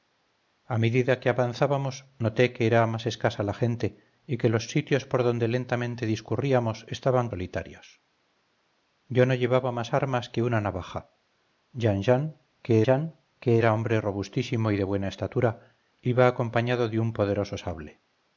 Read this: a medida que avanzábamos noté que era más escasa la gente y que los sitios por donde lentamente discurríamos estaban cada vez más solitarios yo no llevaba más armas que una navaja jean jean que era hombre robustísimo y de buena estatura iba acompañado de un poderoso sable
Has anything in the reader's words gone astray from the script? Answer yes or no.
yes